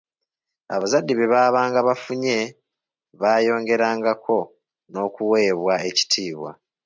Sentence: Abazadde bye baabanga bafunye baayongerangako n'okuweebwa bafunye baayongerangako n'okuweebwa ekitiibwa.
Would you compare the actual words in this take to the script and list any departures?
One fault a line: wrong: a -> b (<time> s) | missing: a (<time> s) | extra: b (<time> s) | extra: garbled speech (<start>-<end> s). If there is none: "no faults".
missing: bafunye baayongerangako n'okuweebwa (5.7 s)